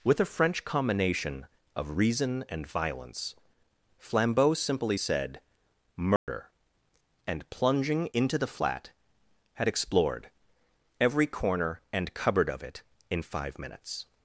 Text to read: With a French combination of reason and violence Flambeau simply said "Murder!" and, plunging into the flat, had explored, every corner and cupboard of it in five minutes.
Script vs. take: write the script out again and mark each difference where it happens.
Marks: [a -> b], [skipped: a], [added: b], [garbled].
With a French combination of reason and violence Flambeau simply said "Murder!" and, plunging into the flat, had explored, every corner and cupboard of it in five minutes.